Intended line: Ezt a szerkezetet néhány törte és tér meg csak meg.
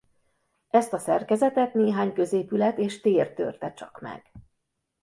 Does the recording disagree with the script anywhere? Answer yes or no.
yes